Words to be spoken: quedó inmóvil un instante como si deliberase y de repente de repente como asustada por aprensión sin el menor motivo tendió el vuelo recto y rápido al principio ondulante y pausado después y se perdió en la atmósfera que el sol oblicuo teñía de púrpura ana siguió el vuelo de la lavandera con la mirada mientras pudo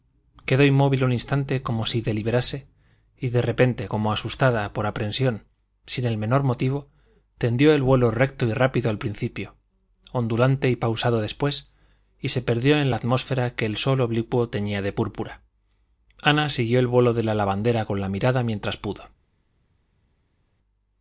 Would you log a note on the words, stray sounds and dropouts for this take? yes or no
yes